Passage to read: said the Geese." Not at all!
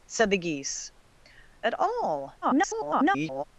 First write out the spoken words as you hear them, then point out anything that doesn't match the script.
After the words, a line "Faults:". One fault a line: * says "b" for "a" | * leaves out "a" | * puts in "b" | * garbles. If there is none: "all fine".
said the Geese." At all! [garbled]
Faults:
* leaves out "Not"
* garbles